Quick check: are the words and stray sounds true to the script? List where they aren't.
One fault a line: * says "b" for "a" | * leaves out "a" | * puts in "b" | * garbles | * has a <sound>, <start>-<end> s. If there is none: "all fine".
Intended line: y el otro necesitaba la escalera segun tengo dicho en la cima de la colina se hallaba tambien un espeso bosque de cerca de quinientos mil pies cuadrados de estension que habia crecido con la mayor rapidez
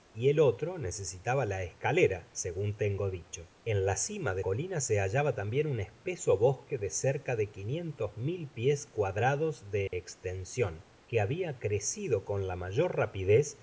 * leaves out "la"
* has a dropout, 9.9-9.9 s